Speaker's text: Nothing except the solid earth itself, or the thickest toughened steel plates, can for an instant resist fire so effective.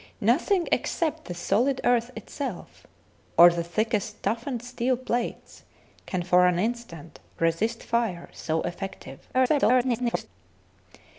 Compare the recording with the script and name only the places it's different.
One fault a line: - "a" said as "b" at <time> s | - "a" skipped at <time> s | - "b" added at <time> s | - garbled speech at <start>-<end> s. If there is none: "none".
- garbled speech at 9.3-10.3 s